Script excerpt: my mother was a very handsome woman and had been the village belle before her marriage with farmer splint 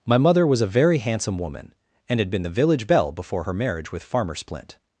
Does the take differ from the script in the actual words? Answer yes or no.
no